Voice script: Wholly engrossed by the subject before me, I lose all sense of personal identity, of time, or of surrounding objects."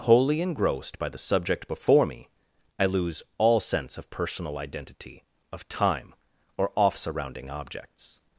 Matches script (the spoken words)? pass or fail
fail